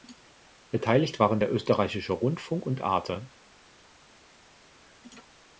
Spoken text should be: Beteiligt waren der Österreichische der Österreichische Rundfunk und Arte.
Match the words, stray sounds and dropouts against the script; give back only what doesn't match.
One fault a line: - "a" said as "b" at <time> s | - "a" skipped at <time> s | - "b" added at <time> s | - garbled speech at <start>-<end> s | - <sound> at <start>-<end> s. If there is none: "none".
- "der Österreichische" skipped at 2.1 s